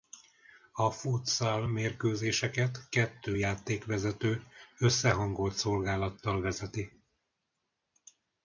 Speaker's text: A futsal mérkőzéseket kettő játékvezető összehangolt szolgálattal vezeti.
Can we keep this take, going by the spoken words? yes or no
yes